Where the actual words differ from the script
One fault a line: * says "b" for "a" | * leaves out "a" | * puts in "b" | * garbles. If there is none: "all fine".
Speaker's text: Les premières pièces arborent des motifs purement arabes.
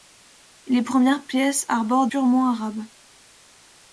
* leaves out "des motifs"